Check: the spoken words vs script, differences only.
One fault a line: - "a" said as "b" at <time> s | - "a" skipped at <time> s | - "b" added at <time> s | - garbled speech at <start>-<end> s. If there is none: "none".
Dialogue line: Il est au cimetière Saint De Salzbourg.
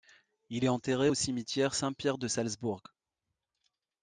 - "enterré" added at 0.7 s
- "Pierre" added at 1.9 s